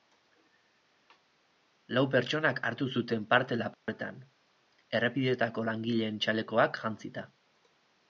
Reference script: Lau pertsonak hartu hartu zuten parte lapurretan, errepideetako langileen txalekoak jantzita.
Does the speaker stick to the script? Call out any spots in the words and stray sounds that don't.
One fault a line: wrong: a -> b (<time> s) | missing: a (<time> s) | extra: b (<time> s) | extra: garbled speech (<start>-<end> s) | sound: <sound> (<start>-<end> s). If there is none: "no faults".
missing: hartu (2.9 s)
sound: dropout (3.7-3.9 s)